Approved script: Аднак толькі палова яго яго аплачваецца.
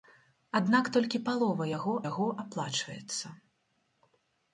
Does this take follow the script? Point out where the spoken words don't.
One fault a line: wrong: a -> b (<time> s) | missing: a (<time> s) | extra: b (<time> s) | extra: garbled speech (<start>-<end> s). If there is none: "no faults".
no faults